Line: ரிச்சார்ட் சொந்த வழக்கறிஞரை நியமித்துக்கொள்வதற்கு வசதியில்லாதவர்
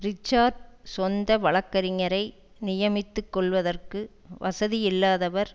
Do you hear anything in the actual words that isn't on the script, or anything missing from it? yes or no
no